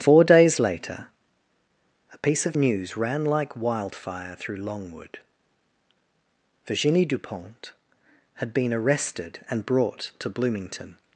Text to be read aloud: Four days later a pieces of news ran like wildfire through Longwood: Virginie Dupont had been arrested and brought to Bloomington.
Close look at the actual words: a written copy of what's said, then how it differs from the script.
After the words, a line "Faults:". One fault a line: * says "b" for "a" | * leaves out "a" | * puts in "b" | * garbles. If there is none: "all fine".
Four days later a piece of news ran like wildfire through Longwood: Virginie Dupont had been arrested and brought to Bloomington.
Faults:
* says "piece" for "pieces"